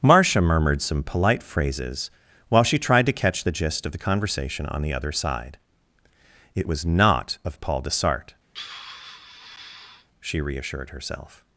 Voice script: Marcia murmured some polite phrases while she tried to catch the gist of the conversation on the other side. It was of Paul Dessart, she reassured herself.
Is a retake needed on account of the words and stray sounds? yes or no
yes